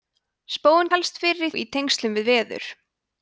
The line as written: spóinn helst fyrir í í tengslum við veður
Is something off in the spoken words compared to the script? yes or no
no